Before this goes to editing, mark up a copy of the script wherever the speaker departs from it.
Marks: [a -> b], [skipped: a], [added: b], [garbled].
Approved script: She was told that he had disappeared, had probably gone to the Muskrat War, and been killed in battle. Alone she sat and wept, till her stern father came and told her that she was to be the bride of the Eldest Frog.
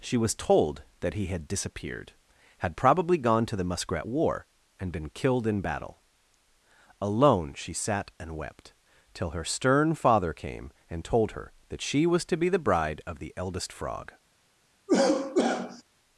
She was told that he had disappeared, had probably gone to the Muskrat War, and been killed in battle. Alone she sat and wept, till her stern father came and told her that she was to be the bride of the Eldest Frog.